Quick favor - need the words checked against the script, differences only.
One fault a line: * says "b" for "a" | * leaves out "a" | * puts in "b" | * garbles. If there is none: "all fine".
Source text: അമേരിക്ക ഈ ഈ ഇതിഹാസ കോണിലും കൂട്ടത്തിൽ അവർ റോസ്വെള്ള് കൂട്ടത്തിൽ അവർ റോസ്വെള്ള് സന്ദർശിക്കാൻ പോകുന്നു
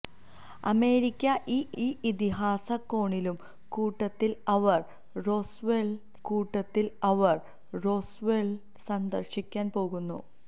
all fine